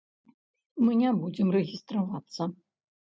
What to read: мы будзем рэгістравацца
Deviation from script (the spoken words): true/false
true